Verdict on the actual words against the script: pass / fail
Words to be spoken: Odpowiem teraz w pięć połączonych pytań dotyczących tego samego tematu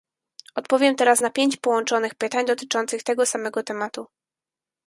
fail